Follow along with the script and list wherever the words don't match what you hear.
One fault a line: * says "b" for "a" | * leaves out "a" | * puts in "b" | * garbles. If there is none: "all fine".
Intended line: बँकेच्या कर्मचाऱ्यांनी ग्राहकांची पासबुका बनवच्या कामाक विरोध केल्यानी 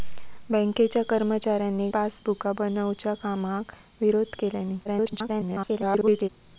* leaves out "ग्राहकांची"
* garbles